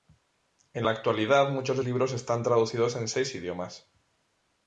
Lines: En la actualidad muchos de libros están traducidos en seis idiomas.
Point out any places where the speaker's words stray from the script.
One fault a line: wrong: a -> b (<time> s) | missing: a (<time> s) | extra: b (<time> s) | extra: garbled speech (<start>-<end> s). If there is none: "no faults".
no faults